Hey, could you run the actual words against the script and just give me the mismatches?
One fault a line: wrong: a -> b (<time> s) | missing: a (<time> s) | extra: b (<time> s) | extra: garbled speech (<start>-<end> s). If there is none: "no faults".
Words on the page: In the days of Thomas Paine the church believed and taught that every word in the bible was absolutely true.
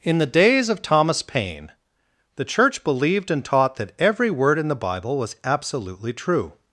no faults